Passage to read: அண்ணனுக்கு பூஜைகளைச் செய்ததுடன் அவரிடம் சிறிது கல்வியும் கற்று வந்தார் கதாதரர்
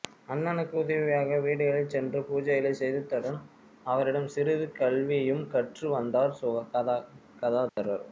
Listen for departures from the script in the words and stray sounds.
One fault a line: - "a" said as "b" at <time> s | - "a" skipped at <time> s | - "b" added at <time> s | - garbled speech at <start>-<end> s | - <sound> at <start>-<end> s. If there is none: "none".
- "உதவியாக வீடுகளில் சென்று" added at 0.8 s
- dropout at 7.7-7.8 s